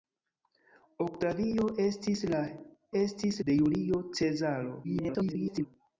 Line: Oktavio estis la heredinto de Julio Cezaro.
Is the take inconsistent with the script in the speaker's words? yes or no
yes